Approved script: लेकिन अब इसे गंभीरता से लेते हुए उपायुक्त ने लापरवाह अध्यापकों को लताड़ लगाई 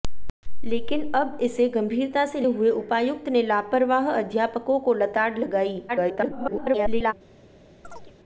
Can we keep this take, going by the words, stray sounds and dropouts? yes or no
no